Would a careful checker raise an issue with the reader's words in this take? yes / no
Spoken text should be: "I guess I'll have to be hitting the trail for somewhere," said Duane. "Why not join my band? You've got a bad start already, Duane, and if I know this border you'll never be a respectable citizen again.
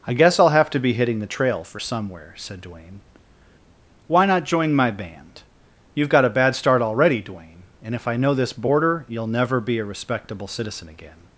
no